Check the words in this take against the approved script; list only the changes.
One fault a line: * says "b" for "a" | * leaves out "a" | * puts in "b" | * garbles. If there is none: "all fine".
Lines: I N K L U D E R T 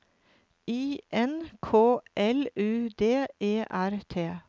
all fine